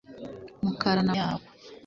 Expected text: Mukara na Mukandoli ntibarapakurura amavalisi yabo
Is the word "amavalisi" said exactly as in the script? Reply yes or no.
no